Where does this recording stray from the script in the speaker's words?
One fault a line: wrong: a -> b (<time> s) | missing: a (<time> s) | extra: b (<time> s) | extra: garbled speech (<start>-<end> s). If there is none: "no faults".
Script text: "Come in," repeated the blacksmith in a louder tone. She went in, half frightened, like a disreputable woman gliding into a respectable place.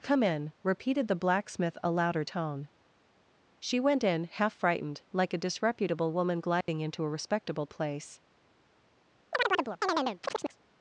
missing: in (1.8 s)